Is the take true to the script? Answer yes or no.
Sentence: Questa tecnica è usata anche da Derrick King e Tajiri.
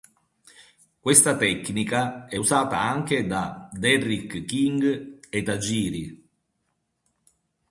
yes